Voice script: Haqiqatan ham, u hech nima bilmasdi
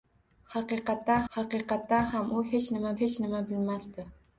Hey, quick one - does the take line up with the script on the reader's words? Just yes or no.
no